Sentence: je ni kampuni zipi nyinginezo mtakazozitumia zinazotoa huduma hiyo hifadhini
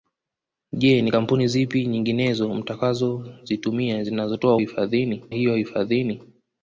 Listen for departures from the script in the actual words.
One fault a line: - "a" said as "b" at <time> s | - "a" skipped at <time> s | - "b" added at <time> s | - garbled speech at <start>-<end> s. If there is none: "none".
- "huduma" said as "hifadhini" at 4.6 s